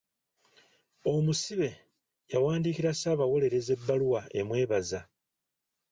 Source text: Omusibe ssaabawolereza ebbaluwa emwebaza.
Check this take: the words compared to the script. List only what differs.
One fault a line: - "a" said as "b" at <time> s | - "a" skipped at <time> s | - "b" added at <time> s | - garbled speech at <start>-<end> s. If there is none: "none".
- "yawandiikira" added at 2.3 s